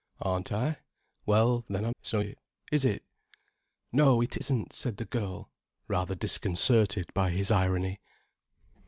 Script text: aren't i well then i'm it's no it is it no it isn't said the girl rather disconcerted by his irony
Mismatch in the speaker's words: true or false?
false